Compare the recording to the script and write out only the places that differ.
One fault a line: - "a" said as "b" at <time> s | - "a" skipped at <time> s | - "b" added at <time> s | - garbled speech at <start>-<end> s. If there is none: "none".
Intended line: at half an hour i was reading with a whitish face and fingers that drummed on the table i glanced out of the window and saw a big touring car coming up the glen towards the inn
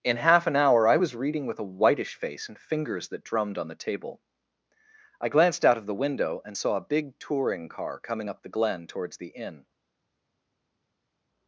- "at" said as "in" at 0.0 s